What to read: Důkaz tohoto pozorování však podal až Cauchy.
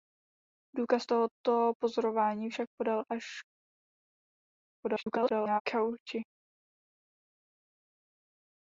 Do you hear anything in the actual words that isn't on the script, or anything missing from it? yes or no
yes